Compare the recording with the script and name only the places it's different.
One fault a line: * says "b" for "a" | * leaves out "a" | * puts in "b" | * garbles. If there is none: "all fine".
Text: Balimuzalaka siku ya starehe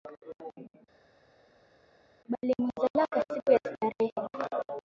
all fine